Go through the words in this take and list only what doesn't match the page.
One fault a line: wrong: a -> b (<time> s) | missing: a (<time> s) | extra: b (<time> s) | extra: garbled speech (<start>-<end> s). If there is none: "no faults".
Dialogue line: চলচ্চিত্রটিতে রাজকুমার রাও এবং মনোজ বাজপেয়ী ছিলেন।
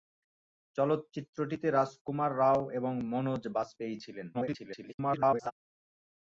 extra: garbled speech (4.3-5.5 s)